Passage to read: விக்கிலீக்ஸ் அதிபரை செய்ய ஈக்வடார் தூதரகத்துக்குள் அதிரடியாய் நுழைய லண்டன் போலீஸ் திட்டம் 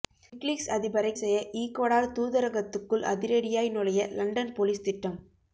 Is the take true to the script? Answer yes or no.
yes